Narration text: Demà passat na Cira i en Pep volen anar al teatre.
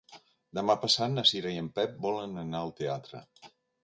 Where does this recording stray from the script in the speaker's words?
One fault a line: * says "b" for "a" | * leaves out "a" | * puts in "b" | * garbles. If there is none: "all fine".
all fine